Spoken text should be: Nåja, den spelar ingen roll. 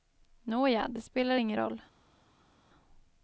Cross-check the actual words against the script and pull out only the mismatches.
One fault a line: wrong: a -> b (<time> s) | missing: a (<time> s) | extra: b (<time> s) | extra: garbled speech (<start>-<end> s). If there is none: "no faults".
wrong: den -> det (0.9 s)